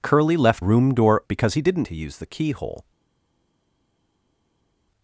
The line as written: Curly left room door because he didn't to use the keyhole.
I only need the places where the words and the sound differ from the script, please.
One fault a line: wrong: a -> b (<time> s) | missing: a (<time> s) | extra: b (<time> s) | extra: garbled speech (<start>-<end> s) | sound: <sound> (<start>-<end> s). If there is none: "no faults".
no faults